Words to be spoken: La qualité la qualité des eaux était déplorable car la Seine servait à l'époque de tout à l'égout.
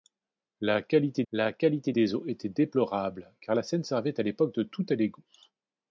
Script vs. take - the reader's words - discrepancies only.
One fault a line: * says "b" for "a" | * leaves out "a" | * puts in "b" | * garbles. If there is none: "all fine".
all fine